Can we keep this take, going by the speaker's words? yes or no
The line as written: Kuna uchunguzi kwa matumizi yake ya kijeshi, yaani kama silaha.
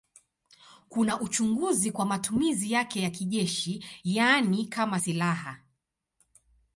yes